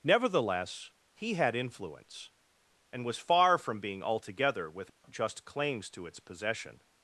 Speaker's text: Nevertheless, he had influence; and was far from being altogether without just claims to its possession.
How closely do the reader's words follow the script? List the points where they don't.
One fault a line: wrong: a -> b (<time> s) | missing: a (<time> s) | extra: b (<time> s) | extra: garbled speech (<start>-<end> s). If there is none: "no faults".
no faults